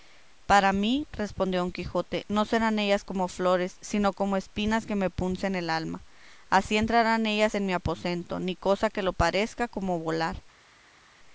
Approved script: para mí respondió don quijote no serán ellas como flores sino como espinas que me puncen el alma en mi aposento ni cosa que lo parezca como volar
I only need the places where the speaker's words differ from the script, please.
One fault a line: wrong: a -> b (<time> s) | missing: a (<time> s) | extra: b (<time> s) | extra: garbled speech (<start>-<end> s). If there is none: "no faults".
extra: así entrarán ellas (6.5 s)